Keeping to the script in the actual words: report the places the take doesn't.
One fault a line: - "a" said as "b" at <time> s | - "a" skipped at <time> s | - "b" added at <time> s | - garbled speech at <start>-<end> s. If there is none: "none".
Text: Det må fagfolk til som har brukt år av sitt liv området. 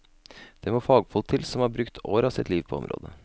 - "på" added at 2.7 s